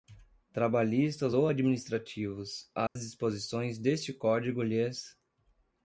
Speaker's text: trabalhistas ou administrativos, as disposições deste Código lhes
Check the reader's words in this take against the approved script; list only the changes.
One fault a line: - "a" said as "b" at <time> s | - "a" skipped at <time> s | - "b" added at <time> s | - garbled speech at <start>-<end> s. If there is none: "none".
none